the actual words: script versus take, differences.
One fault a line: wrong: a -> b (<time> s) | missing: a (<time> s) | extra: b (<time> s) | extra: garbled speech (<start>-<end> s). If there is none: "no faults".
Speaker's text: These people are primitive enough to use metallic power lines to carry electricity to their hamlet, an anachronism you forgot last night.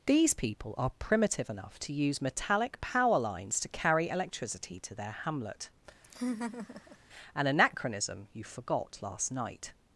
no faults